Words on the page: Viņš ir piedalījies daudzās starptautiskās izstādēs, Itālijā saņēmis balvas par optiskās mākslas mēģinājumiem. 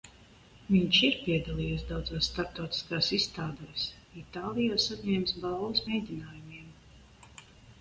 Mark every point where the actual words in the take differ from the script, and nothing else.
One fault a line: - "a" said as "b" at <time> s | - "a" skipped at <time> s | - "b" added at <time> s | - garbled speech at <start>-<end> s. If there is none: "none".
- "par optiskās mākslas" skipped at 5.8 s